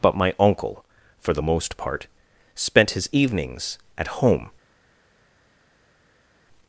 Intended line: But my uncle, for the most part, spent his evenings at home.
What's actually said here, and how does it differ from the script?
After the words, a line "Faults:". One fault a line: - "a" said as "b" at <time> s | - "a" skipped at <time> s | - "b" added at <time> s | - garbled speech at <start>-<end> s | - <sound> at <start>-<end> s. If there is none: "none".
But my uncle, for the most part, spent his evenings at home.
Faults:
none